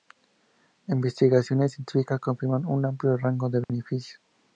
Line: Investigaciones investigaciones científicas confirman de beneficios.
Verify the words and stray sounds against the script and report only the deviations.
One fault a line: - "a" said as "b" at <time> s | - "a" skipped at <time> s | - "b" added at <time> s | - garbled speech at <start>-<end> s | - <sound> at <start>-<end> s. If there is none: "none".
- "investigaciones" skipped at 1.7 s
- "un amplio rango" added at 2.6 s
- dropout at 3.6-3.7 s